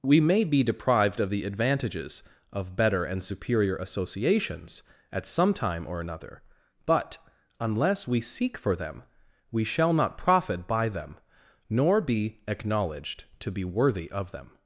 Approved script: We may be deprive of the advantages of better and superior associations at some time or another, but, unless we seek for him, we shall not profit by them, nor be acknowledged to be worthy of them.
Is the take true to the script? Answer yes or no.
no